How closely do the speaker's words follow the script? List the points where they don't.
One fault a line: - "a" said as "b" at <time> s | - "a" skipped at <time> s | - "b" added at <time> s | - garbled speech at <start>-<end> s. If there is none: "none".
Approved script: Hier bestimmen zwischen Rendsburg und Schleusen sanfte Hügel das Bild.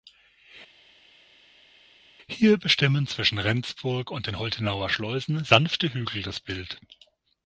- "den Holtenauer" added at 4.3 s